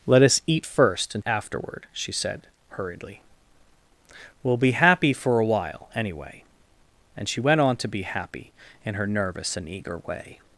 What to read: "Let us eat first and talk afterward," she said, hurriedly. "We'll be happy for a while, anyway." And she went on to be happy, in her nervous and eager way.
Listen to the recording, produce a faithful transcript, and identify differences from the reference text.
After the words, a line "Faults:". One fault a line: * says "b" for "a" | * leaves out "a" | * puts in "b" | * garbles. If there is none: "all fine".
"Let us eat first and afterward," she said, hurriedly. "We'll be happy for a while, anyway." And she went on to be happy, in her nervous and eager way.
Faults:
* leaves out "talk"